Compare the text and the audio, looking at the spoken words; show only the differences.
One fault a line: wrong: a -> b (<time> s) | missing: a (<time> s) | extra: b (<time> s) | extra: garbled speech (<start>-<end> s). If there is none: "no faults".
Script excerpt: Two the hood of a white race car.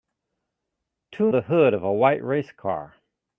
no faults